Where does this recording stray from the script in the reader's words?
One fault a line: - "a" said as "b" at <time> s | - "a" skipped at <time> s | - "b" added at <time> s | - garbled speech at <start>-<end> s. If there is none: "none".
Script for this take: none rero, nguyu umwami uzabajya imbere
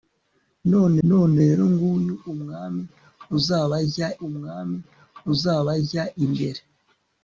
- "none" added at 1.1 s
- "umwami uzabajya" added at 4.3 s